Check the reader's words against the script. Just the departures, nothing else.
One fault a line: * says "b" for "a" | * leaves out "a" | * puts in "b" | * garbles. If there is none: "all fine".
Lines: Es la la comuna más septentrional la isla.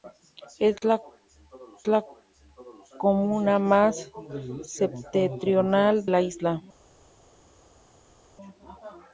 all fine